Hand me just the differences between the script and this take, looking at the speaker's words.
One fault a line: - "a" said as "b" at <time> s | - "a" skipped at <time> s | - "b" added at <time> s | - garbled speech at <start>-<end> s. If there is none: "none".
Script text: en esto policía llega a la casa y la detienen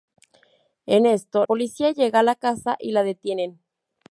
none